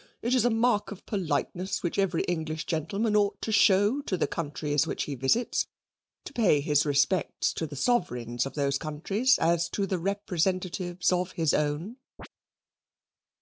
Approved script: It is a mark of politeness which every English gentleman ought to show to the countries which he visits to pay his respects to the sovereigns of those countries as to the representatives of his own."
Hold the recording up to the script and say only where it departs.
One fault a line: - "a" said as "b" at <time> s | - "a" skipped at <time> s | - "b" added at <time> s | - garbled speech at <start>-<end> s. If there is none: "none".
none